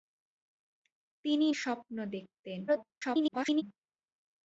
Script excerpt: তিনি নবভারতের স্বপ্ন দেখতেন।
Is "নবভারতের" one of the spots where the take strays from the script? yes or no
yes